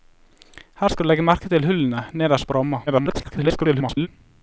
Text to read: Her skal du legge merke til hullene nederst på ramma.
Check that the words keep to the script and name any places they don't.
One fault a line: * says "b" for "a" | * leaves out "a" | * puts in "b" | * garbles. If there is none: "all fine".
* garbles